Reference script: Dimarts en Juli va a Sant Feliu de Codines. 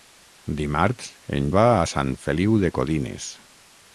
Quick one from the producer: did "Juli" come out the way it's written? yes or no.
no